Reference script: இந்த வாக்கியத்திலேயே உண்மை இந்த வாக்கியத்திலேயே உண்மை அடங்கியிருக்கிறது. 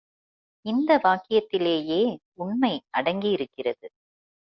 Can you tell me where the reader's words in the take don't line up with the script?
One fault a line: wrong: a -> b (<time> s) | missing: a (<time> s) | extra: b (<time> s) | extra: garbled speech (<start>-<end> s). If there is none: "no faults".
missing: இந்த வாக்கியத்திலேயே உண்மை (2.7 s)